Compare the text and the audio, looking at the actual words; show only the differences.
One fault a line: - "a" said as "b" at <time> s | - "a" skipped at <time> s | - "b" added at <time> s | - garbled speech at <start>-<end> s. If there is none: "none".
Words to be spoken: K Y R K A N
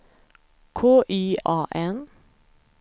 - "R K" skipped at 1.4 s